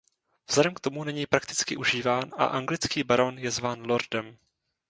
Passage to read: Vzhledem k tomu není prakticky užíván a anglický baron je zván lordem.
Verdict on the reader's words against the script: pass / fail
pass